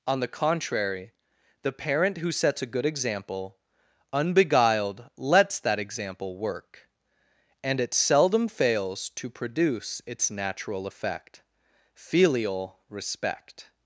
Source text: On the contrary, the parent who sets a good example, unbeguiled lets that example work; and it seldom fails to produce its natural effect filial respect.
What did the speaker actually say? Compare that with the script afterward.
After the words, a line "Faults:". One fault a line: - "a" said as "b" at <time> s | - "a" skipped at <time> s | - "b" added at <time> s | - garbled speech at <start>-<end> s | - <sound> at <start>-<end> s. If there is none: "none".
On the contrary, the parent who sets a good example, unbeguiled lets that example work; and it seldom fails to produce its natural effect filial respect.
Faults:
none